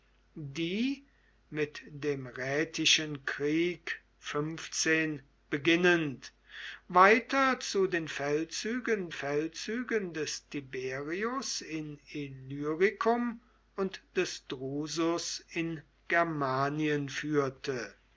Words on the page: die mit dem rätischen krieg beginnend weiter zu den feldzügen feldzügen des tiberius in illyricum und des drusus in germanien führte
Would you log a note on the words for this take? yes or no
no